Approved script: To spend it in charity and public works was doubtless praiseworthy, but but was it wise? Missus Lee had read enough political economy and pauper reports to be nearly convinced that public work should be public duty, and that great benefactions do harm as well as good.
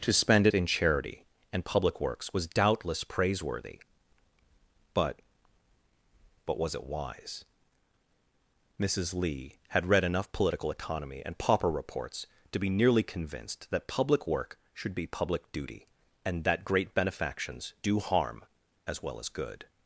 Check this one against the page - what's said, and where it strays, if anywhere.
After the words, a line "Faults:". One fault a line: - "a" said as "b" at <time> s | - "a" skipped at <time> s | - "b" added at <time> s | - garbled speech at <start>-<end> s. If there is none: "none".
To spend it in charity and public works was doubtless praiseworthy, but but was it wise? Missus Lee had read enough political economy and pauper reports to be nearly convinced that public work should be public duty, and that great benefactions do harm as well as good.
Faults:
none